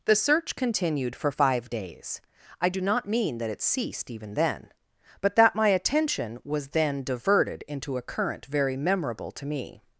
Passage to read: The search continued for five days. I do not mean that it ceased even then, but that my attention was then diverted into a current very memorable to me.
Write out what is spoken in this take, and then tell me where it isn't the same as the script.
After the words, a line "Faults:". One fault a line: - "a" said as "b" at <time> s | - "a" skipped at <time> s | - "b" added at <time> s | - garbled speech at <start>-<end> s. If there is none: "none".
The search continued for five days. I do not mean that it ceased even then, but that my attention was then diverted into a current very memorable to me.
Faults:
none